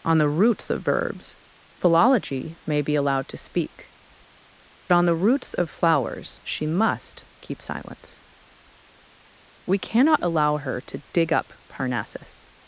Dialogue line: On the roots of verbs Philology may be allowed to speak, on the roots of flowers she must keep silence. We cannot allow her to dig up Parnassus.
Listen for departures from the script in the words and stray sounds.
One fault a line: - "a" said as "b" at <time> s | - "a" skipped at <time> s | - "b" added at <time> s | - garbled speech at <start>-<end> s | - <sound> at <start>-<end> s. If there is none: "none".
none